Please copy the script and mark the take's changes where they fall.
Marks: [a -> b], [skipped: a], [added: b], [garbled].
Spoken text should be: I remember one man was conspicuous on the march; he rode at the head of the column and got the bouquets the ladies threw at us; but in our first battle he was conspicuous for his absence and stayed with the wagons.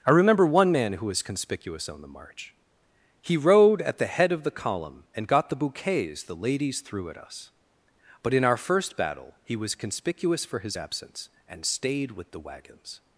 I remember one man [added: who] was conspicuous on the march; he rode at the head of the column and got the bouquets the ladies threw at us; but in our first battle he was conspicuous for his absence and stayed with the wagons.